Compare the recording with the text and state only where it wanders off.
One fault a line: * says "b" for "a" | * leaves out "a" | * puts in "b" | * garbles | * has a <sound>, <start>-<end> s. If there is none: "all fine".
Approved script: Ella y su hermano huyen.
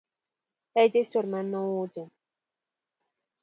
all fine